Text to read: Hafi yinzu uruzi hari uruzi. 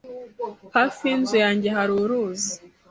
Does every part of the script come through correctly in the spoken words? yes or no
no